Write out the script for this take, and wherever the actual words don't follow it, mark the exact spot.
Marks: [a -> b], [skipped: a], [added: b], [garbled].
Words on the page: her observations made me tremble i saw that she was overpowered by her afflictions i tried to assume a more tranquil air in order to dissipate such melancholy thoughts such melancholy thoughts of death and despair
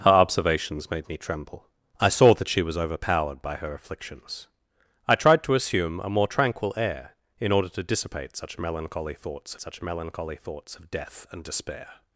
her observations made me tremble i saw that she was overpowered by her afflictions i tried to assume a more tranquil air in order to dissipate such melancholy thoughts such melancholy thoughts of death and despair